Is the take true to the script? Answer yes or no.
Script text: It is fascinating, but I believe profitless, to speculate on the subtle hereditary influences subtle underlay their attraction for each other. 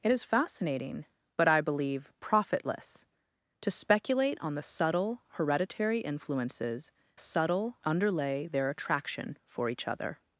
yes